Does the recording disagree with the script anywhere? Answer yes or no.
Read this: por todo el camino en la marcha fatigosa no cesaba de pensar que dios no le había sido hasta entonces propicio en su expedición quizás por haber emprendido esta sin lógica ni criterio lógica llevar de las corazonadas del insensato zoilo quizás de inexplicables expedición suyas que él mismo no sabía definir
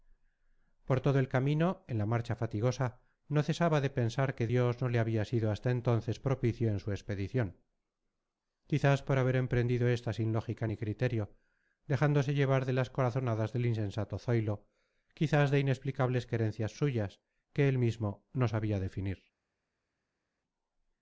yes